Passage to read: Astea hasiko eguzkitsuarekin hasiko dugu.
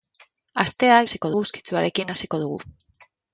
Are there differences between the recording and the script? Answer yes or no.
no